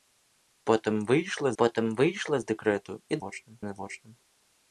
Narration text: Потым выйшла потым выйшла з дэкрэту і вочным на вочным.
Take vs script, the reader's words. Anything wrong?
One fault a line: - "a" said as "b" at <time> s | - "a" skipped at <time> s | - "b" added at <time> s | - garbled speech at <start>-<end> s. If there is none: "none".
none